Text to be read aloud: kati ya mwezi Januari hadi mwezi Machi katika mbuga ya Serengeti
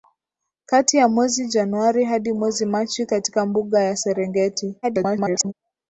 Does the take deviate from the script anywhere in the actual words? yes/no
yes